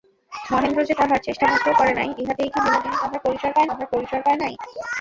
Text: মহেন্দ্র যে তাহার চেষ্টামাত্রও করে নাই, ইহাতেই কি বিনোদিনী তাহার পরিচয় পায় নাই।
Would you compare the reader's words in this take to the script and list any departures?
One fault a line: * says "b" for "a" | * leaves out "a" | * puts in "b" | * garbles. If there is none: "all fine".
* puts in "তাহার পরিচয় পায়"